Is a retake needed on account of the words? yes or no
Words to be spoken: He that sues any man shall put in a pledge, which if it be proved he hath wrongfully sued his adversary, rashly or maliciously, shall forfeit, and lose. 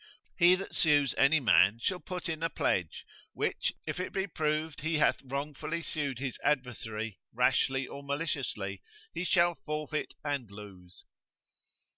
yes